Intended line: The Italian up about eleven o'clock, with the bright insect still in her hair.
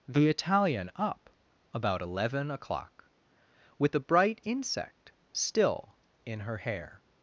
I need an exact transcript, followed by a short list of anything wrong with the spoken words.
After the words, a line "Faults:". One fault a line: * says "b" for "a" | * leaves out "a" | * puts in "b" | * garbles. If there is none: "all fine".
The Italian up about eleven o'clock, with the bright insect still in her hair.
Faults:
all fine